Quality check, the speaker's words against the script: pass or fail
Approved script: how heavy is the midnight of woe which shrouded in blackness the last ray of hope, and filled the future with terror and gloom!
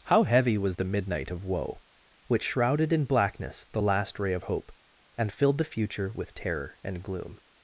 fail